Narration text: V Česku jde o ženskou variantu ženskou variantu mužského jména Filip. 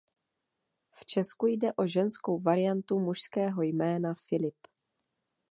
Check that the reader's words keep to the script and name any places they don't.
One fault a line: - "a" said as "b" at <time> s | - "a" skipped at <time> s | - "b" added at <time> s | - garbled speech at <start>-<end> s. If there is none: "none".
- "ženskou variantu" skipped at 3.0 s